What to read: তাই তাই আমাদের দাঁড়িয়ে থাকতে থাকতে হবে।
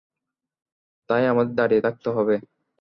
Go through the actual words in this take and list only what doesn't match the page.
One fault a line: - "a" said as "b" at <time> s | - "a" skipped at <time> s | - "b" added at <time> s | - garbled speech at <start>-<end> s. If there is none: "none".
- "তাই" skipped at 1.2 s
- "থাকতে" skipped at 2.1 s